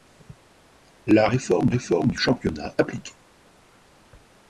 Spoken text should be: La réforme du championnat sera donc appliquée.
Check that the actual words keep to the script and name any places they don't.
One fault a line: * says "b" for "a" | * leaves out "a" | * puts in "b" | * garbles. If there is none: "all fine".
* puts in "réforme"
* leaves out "sera donc"